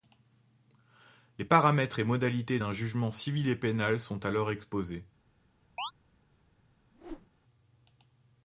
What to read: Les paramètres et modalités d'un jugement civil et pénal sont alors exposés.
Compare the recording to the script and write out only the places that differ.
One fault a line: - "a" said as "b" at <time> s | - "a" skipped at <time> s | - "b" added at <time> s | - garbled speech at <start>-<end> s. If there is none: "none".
none